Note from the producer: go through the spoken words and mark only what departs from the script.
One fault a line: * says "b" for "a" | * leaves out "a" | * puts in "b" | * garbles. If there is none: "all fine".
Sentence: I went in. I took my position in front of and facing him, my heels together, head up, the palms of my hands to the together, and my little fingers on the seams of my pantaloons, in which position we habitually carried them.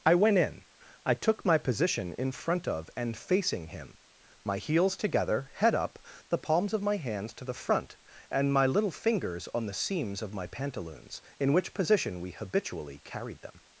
* says "front" for "together"